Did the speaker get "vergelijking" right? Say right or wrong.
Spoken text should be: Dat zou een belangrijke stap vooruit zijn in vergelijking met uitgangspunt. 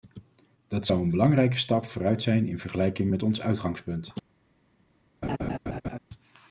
right